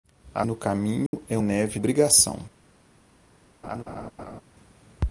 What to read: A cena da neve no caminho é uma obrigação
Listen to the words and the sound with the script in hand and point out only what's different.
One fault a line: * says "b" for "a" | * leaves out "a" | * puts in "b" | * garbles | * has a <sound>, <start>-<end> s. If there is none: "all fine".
* leaves out "cena da neve"
* has a dropout, 1.1-1.1 s
* says "neve" for "uma"
* has a laugh, 3.6-4.4 s